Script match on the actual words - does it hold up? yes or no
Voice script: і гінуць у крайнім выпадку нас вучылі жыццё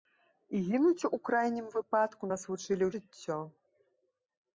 yes